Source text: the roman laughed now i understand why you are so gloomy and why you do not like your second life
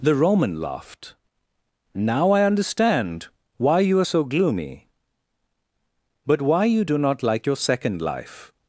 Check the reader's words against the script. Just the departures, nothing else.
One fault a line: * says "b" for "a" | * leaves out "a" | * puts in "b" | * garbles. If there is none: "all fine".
* says "but" for "and"